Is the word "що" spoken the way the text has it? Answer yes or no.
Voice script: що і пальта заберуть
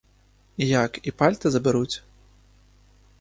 no